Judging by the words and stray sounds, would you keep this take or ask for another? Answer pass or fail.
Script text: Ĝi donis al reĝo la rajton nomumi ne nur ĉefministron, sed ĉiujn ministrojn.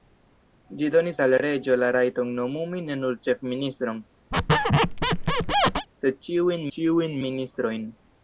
fail